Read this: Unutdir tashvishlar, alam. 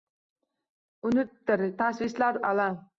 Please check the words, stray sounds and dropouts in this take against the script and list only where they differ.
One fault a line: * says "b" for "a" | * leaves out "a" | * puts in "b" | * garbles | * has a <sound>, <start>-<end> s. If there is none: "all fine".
all fine